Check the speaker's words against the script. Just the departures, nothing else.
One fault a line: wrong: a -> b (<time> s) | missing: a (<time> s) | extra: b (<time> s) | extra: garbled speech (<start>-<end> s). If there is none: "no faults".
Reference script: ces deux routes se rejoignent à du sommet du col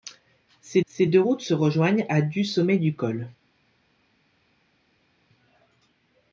extra: ces (0.9 s)